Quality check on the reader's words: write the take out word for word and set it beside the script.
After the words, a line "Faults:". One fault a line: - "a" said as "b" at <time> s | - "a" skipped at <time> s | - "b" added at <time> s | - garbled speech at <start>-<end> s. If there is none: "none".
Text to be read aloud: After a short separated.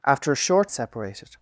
After a short separated.
Faults:
none